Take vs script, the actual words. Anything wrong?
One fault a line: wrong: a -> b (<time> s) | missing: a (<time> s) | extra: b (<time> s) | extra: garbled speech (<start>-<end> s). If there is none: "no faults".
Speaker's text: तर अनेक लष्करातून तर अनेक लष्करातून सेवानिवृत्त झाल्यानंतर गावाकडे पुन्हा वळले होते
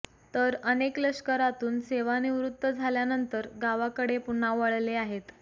missing: तर अनेक लष्करातून (1.8 s)
wrong: होते -> आहेत (5.0 s)